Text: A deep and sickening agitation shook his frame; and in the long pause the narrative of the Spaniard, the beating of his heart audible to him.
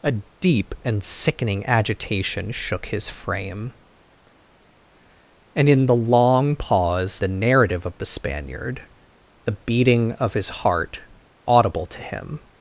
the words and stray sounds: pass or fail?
pass